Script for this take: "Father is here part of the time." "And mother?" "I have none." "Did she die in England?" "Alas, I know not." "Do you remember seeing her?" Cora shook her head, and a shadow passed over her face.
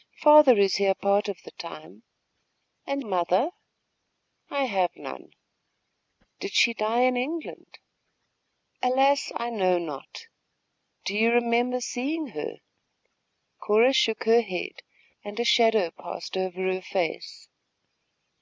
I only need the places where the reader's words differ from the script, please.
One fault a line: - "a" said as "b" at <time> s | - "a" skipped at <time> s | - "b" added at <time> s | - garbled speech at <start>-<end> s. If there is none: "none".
none